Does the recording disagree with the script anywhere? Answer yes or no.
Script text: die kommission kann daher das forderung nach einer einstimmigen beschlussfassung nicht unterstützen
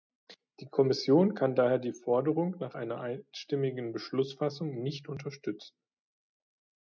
yes